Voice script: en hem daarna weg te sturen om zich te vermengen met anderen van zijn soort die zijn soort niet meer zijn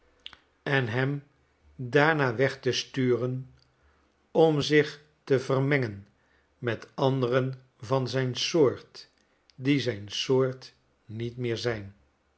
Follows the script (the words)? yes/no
yes